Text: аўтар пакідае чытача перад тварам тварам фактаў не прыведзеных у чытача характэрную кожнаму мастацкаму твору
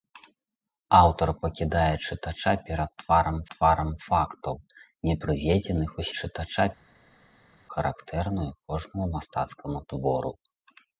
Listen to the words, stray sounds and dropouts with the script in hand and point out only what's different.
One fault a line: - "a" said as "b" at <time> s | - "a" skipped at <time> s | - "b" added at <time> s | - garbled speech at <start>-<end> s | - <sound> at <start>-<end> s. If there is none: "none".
none